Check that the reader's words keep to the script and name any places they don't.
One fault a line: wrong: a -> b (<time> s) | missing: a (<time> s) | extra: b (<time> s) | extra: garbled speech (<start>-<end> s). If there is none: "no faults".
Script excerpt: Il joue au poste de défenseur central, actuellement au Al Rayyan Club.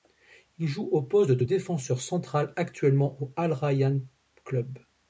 no faults